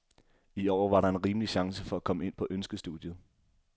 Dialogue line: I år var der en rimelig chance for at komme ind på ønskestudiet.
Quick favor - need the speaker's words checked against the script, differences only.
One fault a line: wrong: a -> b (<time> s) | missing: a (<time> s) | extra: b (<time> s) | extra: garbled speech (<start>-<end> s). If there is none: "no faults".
no faults